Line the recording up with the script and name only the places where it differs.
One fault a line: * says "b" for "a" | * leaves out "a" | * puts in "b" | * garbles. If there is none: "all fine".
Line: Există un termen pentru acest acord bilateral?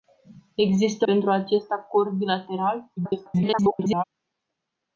* leaves out "un termen"
* garbles